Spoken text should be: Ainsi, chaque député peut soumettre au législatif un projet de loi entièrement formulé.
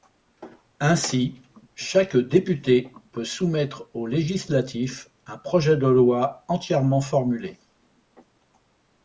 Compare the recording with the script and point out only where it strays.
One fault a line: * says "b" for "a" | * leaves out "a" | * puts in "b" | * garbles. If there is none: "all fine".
all fine